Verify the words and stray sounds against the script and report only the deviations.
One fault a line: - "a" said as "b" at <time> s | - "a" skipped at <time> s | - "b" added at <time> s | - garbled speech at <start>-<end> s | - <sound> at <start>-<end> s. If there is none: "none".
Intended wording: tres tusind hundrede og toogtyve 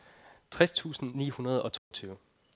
- "ni" added at 1.1 s
- dropout at 1.8-1.9 s